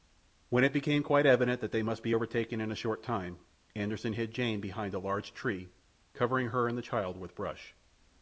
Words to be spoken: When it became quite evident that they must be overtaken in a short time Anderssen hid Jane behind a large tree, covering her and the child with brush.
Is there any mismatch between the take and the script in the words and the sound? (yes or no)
no